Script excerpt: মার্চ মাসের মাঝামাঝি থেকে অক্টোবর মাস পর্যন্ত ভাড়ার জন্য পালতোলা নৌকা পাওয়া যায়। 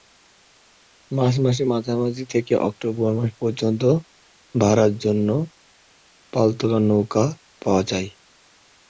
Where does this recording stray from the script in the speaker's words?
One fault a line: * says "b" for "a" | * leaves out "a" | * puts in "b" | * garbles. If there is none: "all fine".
all fine